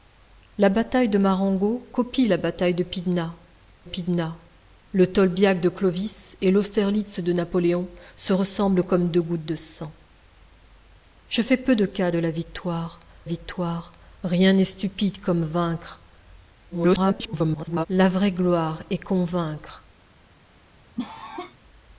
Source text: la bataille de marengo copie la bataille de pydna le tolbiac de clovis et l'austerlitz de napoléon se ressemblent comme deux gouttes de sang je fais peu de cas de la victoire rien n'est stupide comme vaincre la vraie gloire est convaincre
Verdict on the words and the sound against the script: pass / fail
fail